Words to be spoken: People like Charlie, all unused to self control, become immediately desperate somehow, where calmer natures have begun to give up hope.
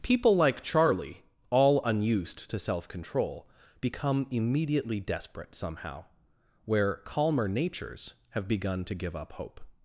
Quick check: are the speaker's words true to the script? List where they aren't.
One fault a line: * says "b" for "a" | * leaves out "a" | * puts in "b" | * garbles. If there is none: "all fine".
all fine